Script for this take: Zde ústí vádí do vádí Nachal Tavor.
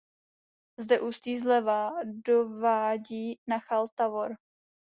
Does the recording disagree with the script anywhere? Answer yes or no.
yes